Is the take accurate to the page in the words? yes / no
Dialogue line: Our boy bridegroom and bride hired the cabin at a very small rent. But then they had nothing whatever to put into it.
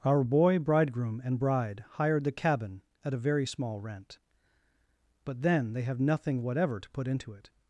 no